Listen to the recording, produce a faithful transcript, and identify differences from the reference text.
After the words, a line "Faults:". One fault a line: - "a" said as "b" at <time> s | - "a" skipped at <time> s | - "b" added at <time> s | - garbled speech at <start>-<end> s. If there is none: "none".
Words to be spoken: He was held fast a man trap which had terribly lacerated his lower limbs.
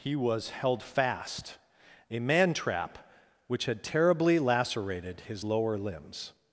He was held fast a man trap which had terribly lacerated his lower limbs.
Faults:
none